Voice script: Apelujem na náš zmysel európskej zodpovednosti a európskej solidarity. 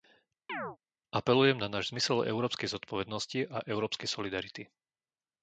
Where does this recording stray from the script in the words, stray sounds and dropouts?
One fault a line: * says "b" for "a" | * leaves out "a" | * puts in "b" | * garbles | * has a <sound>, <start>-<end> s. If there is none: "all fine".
* has a chirp, 0.5-0.8 s